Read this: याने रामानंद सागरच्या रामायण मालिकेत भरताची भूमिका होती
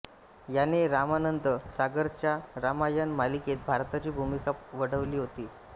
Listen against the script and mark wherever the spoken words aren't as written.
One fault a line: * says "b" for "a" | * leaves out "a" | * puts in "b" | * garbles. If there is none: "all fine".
* puts in "वठवली"